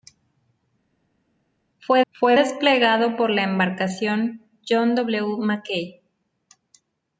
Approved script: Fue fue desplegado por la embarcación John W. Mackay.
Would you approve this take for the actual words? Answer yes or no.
yes